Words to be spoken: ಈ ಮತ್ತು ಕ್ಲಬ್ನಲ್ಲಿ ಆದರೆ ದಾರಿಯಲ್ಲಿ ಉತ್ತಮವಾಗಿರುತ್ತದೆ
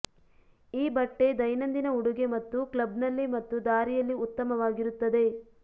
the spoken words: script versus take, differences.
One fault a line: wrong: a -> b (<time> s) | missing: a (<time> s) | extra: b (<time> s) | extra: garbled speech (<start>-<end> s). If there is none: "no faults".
extra: ಬಟ್ಟೆ ದೈನಂದಿನ ಉಡುಗೆ (0.9 s)
wrong: ಆದರೆ -> ಮತ್ತು (3.4 s)